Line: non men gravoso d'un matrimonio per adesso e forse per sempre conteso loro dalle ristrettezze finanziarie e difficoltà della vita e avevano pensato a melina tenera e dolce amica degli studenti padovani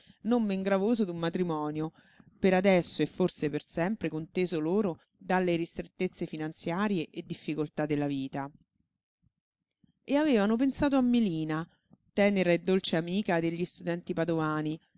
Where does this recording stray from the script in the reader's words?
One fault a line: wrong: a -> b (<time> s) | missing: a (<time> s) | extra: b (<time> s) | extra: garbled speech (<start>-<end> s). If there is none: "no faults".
no faults